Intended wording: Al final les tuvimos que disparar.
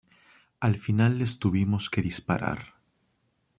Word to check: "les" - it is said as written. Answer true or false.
true